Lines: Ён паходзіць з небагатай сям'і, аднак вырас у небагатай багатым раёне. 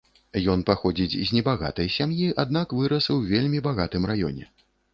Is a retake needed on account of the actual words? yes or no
yes